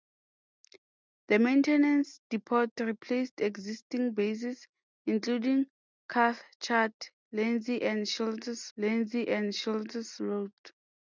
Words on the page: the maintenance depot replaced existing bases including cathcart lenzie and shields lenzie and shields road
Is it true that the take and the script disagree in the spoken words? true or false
false